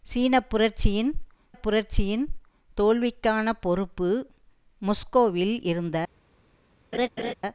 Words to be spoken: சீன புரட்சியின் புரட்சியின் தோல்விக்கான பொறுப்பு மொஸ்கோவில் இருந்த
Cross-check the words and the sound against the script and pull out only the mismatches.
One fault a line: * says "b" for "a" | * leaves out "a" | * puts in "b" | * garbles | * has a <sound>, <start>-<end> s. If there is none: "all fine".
* has a laugh, 6.9-7.3 s